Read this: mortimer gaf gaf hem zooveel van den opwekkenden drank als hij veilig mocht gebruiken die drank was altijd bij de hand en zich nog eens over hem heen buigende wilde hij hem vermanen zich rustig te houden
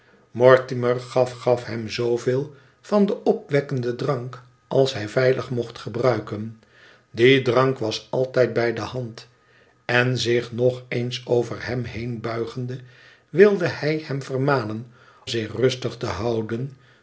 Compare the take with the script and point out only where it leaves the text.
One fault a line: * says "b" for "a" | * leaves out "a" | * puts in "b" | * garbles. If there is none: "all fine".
all fine